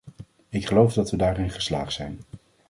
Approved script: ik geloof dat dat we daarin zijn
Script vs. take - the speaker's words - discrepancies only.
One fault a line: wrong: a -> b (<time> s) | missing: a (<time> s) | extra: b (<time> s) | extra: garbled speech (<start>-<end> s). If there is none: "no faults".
missing: dat (1.1 s)
extra: geslaagd (1.5 s)